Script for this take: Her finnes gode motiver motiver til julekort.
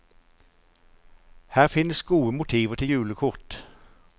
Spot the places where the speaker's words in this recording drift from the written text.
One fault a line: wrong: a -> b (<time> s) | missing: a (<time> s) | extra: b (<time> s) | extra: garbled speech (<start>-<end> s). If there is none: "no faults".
missing: motiver (2.8 s)